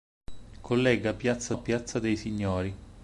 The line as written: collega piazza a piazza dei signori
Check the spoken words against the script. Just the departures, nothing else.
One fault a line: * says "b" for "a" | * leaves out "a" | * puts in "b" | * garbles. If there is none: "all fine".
all fine